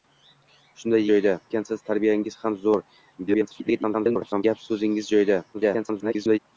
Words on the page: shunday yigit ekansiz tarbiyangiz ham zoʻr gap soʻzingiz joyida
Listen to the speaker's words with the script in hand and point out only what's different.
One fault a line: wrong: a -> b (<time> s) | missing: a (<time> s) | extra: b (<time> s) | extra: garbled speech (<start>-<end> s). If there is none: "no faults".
wrong: yigit -> joyida (1.1 s)
extra: garbled speech (3.3-4.4 s)
extra: garbled speech (5.5-6.4 s)